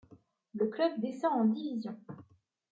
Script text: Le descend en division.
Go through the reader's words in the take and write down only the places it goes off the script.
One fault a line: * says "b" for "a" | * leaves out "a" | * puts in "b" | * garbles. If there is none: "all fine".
* puts in "club"